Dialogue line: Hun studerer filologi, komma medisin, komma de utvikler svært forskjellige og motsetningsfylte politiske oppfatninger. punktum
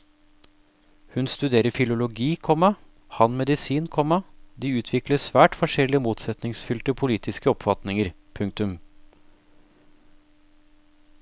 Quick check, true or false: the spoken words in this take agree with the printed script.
false